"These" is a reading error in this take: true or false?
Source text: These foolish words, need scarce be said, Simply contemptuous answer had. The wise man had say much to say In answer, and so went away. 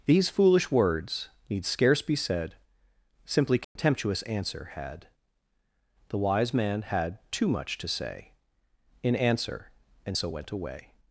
false